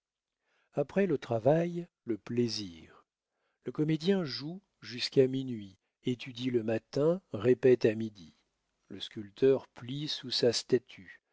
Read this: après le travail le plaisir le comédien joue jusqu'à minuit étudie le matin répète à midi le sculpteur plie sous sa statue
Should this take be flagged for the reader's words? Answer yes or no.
no